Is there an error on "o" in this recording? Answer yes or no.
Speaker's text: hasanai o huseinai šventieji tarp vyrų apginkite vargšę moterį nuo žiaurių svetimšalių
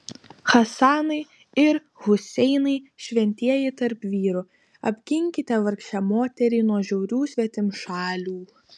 yes